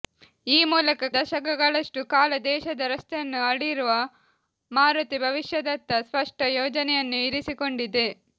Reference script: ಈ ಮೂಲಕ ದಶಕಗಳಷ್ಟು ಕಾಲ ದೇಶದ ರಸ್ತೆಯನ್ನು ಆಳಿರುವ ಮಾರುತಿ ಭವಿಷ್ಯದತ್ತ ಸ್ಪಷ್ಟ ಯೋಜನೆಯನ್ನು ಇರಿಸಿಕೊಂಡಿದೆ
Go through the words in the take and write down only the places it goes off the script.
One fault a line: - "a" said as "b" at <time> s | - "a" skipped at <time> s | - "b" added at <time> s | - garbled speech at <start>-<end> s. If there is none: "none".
none